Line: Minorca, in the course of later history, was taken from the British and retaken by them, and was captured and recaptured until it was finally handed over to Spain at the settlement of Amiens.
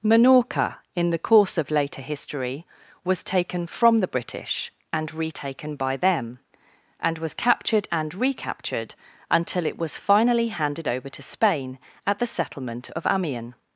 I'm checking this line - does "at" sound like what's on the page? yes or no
yes